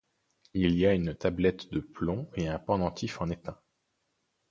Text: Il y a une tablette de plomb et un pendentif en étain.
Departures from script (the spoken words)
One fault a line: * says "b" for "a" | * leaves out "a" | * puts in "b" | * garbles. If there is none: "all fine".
all fine